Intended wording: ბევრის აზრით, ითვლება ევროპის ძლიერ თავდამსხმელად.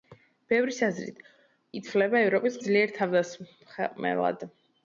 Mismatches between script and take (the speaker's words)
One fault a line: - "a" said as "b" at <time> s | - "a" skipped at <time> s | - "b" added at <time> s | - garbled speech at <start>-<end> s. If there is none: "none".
none